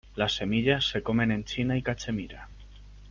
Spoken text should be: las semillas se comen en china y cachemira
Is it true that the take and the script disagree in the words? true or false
false